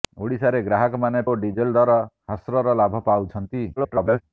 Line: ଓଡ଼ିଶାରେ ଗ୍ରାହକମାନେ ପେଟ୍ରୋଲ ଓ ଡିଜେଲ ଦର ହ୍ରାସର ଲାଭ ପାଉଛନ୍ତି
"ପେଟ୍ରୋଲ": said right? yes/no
no